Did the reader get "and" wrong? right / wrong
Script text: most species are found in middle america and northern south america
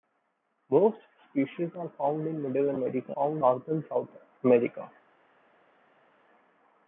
wrong